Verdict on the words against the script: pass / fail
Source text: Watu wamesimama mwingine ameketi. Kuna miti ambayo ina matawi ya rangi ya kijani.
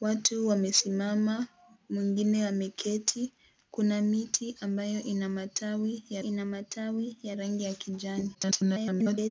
fail